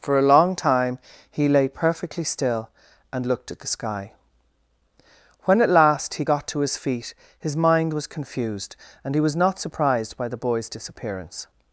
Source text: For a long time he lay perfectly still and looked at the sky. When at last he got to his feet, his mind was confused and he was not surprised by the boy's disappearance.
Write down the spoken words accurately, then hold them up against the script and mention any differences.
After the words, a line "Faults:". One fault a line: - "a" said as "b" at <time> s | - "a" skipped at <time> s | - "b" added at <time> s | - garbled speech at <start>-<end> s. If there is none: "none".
For a long time he lay perfectly still and looked at the sky. When at last he got to his feet, his mind was confused and he was not surprised by the boy's disappearance.
Faults:
none